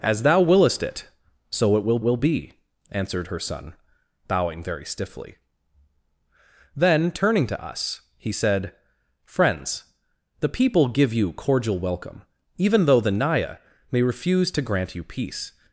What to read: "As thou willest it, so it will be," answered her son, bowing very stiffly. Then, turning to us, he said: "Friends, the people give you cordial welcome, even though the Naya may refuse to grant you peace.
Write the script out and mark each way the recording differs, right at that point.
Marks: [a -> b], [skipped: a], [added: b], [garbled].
"As thou willest it, so it will [added: will] be," answered her son, bowing very stiffly. Then, turning to us, he said: "Friends, the people give you cordial welcome, even though the Naya may refuse to grant you peace.